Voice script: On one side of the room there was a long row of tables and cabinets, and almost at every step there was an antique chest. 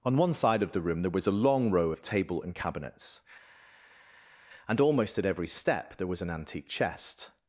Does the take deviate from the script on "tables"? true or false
true